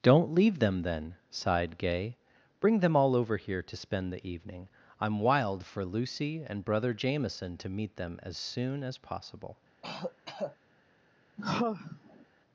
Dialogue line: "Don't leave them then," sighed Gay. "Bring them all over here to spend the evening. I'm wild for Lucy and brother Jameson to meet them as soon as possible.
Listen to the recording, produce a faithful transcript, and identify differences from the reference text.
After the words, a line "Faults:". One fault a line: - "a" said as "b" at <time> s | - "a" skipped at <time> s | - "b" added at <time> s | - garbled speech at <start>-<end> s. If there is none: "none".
"Don't leave them then," sighed Gay. "Bring them all over here to spend the evening. I'm wild for Lucy and brother Jameson to meet them as soon as possible.
Faults:
none